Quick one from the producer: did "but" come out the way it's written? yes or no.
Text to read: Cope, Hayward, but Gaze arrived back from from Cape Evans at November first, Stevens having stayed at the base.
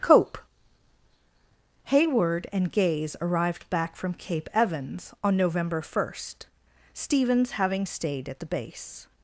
no